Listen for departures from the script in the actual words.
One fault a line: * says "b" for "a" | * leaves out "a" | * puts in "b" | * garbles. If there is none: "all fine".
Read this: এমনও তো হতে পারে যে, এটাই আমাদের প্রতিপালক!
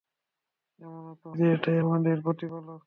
* leaves out "হতে পারে"